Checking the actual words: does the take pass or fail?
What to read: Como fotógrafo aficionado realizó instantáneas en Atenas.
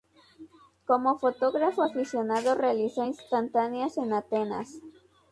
pass